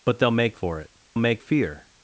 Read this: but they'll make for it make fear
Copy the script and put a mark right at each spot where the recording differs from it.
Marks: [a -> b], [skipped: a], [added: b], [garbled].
but they'll make for it make fear